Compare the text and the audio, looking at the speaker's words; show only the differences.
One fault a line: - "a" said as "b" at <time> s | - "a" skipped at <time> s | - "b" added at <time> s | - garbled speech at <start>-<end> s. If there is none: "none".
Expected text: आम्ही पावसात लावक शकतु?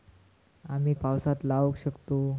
none